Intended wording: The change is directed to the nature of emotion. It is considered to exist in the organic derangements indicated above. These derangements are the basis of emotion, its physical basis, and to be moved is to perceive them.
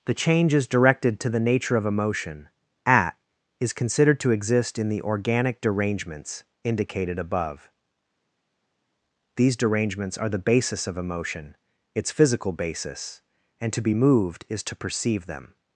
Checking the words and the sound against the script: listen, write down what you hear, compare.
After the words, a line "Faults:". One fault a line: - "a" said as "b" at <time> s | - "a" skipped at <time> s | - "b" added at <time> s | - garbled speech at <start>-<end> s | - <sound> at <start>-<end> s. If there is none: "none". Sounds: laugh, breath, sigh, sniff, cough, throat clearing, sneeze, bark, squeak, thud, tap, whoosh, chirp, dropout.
The change is directed to the nature of emotion. At is considered to exist in the organic derangements indicated above. These derangements are the basis of emotion, its physical basis, and to be moved is to perceive them.
Faults:
- "It" said as "At" at 2.9 s